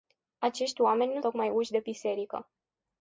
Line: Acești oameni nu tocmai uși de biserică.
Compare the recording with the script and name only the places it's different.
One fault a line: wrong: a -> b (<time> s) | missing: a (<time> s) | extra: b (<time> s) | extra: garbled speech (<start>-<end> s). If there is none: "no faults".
no faults